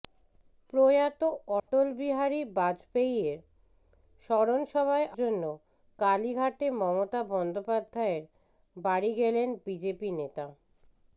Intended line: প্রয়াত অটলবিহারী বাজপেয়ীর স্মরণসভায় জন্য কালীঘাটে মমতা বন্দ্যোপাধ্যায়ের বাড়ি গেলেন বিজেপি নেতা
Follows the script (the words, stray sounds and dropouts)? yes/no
no